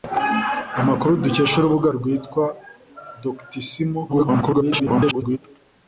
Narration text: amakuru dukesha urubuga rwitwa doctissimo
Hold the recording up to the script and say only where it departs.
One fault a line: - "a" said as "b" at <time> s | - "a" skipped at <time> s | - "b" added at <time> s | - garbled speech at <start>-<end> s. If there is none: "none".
- garbled speech at 4.1-5.4 s